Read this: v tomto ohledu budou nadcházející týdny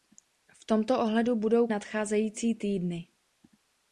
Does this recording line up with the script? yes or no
yes